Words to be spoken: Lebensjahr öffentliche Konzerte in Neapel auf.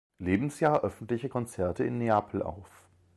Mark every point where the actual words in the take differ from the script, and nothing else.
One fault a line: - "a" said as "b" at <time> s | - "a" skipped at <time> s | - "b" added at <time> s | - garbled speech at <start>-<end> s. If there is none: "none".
none